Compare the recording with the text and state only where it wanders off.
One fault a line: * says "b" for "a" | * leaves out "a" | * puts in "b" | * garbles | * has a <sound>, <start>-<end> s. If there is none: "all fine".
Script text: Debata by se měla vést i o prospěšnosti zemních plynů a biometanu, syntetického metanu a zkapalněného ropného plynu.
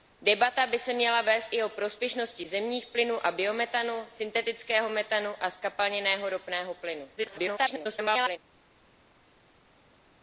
* garbles